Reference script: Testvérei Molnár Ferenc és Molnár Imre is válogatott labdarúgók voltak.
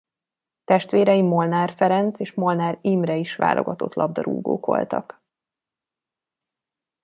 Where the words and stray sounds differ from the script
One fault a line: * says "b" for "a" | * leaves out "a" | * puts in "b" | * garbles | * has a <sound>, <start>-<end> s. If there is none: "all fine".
all fine